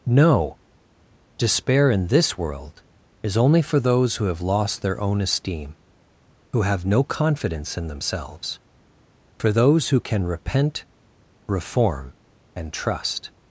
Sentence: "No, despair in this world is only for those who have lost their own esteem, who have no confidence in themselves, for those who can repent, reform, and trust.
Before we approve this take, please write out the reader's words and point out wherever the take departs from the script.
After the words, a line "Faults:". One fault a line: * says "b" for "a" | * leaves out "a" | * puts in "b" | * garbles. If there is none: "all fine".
"No, despair in this world is only for those who have lost their own esteem, who have no confidence in themselves, for those who can repent, reform, and trust.
Faults:
all fine